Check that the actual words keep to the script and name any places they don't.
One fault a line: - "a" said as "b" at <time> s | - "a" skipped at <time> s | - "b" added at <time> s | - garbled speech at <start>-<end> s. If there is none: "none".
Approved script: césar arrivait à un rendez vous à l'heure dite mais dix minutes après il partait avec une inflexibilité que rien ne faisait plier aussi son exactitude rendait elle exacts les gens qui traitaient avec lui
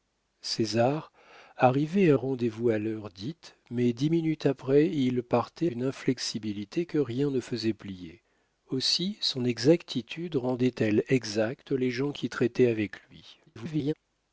- "un" skipped at 2.2 s
- "avec" skipped at 5.7 s
- garbled speech at 13.5-13.9 s